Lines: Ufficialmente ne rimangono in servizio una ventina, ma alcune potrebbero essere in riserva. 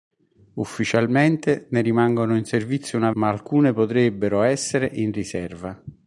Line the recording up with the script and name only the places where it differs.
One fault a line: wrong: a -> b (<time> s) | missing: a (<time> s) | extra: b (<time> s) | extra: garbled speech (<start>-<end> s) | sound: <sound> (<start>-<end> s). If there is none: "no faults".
missing: ventina (3.1 s)